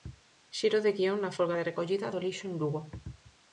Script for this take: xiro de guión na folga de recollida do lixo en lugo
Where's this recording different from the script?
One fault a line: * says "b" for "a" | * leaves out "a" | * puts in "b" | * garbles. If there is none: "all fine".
all fine